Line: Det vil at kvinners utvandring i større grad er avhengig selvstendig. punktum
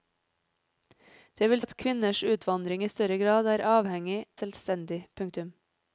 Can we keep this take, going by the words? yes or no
yes